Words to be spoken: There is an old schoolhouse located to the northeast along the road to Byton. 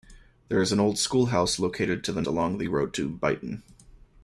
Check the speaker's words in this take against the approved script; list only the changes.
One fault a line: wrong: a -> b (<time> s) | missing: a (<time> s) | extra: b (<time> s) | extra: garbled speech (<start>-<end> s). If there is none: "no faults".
missing: northeast (2.2 s)